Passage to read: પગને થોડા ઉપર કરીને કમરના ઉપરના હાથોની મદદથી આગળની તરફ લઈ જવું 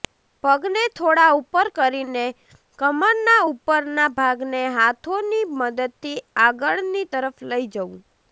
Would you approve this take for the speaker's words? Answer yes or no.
no